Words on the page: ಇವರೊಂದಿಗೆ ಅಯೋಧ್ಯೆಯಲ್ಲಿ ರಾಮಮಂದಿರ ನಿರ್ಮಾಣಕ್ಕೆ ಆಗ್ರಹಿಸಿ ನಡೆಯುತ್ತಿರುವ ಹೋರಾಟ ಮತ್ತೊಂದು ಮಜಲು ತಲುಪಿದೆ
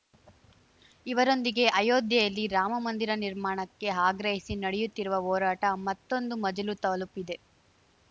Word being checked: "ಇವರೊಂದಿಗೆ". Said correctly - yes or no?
yes